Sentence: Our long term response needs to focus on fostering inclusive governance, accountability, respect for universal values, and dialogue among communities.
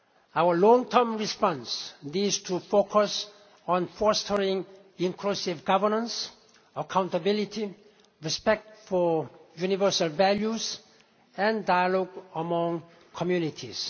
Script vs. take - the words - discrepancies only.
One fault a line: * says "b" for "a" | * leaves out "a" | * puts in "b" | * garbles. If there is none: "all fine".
all fine